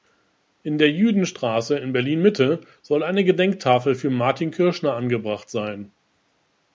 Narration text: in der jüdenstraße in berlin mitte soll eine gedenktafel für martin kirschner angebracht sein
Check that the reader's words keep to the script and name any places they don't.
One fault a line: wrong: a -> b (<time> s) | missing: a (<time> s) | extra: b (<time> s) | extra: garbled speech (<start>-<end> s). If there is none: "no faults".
no faults